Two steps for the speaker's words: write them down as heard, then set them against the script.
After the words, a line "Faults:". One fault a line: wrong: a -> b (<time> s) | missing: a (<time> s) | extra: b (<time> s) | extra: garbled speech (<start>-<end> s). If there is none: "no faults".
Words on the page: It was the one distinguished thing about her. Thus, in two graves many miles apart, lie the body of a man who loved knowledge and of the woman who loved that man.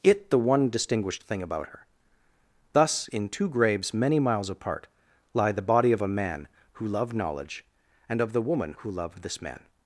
It the one distinguished thing about her. Thus, in two graves many miles apart, lie the body of a man who loved knowledge and of the woman who loved this man.
Faults:
missing: was (0.3 s)
wrong: that -> this (9.2 s)